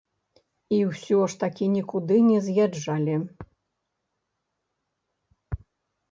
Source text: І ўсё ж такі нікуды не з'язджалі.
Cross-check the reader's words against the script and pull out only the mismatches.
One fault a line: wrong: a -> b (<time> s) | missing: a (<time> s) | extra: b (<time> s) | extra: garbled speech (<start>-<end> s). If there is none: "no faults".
no faults